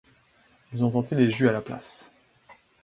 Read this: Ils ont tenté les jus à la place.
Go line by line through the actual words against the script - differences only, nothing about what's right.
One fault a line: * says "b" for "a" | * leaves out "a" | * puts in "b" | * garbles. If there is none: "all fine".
all fine